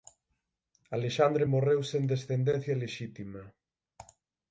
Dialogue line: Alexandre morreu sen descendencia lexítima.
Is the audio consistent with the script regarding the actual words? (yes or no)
yes